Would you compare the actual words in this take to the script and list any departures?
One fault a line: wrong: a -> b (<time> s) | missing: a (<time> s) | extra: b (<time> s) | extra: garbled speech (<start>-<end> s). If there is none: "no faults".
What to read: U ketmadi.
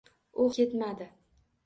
no faults